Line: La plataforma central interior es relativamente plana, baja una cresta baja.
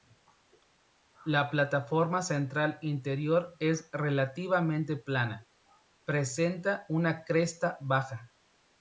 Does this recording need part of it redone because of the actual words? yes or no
yes